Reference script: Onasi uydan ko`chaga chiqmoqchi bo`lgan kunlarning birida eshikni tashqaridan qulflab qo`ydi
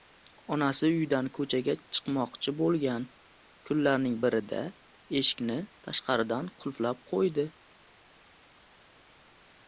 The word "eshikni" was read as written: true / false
true